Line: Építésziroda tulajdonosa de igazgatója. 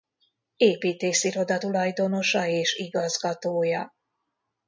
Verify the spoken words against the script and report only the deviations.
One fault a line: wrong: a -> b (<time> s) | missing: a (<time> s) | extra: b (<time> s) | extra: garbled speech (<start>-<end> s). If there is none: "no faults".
wrong: de -> és (2.5 s)